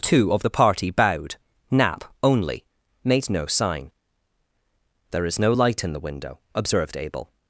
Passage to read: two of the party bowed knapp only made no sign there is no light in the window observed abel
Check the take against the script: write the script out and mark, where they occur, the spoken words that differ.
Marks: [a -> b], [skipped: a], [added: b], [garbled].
two of the party bowed knapp only made no sign there is no light in the window observed abel